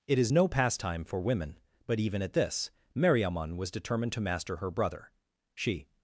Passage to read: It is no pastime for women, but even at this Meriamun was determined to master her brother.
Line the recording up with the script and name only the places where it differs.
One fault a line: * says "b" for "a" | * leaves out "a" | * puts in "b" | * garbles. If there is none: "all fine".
* puts in "She"